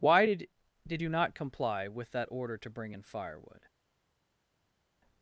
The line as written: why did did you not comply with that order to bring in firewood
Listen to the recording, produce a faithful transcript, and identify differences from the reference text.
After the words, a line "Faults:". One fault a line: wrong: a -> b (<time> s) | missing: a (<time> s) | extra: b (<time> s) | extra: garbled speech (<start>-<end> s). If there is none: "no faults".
why did did you not comply with that order to bring in firewood
Faults:
no faults